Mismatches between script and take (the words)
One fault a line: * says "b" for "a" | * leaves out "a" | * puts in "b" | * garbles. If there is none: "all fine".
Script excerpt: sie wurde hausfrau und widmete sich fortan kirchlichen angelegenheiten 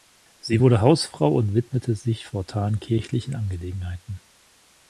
all fine